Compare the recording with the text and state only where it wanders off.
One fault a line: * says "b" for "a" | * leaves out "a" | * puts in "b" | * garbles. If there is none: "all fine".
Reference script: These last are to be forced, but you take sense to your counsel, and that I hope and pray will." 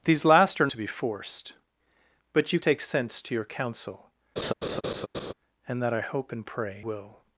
all fine